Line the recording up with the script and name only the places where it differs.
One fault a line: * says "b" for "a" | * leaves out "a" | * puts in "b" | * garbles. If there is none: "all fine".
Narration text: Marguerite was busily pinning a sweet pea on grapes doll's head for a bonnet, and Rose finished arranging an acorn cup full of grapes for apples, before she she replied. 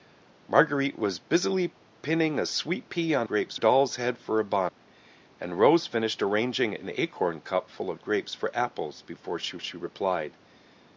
all fine